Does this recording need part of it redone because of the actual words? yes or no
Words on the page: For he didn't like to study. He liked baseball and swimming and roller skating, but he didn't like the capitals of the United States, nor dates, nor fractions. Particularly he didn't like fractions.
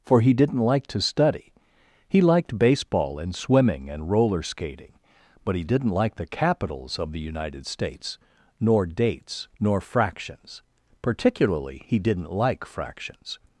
no